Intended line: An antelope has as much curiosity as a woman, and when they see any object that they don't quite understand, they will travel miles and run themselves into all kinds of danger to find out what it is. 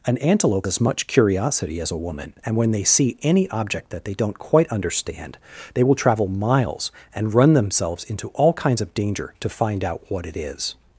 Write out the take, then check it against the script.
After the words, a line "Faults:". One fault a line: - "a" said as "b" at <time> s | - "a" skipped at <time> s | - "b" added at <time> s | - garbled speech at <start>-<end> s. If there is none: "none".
An antelope as much curiosity as a woman, and when they see any object that they don't quite understand, they will travel miles and run themselves into all kinds of danger to find out what it is.
Faults:
- "has" skipped at 0.7 s